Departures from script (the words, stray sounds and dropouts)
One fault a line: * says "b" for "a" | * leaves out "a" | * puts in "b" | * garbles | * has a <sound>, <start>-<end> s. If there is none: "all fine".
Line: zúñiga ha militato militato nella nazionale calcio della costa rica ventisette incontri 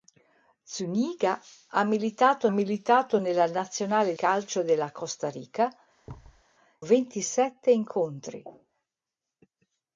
* has a thud, 6.1-6.4 s